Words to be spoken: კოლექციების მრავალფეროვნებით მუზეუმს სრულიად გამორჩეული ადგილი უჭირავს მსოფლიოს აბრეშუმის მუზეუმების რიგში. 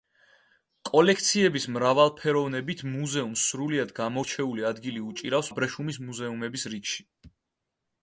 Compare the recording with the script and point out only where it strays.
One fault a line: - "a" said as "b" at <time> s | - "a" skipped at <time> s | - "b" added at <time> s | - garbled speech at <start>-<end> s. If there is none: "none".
- "მსოფლიოს" skipped at 5.5 s